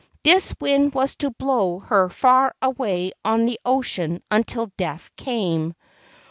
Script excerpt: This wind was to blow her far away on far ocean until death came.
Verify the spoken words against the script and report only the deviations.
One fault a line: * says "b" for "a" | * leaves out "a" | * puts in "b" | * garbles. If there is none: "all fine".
* says "the" for "far"